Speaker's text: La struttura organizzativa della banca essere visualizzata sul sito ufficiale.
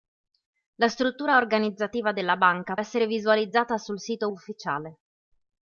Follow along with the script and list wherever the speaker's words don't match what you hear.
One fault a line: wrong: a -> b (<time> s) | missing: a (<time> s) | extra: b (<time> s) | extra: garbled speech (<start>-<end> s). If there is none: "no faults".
no faults